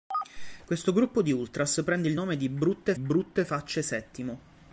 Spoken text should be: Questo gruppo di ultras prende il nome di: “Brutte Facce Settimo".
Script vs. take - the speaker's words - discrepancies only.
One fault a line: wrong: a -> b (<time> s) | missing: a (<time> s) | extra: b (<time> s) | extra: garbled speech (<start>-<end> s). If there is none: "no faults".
extra: brutte (3.0 s)